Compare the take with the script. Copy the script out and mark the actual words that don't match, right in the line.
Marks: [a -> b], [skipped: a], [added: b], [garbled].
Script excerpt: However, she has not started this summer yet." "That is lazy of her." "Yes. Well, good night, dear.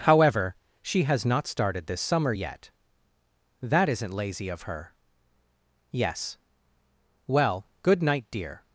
However, she has not started this summer yet." "That [is -> isn't] lazy of her." "Yes. Well, good night, dear.